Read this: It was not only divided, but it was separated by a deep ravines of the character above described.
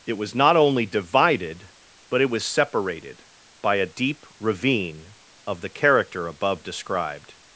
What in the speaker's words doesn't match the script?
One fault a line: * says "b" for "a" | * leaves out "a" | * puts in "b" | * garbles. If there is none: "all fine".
* says "ravine" for "ravines"